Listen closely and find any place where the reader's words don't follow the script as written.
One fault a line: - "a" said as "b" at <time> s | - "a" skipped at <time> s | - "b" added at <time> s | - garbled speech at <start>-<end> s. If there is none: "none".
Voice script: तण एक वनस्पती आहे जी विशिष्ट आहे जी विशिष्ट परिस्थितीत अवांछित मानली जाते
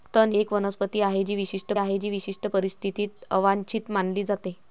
none